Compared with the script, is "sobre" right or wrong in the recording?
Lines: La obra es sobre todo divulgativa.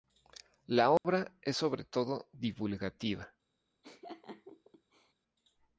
right